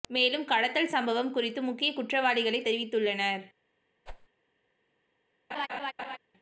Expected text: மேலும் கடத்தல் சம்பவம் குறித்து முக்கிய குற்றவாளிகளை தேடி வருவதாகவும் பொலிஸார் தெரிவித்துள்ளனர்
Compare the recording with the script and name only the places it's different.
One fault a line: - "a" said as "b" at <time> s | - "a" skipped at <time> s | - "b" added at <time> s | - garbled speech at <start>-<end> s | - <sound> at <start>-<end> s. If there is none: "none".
- "தேடி வருவதாகவும் பொலிஸார்" skipped at 2.6 s
- whoosh at 4.1-4.3 s
- laugh at 5.5-6.2 s